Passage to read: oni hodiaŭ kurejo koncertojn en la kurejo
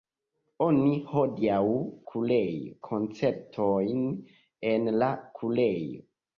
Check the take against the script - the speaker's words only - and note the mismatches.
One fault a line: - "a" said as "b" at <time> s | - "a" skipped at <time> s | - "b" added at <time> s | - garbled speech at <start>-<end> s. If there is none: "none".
none